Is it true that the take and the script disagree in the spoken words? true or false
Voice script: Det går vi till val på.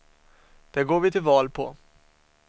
false